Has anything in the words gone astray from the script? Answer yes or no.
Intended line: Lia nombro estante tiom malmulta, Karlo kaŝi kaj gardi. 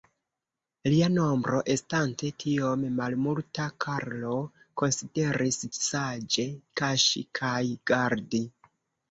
yes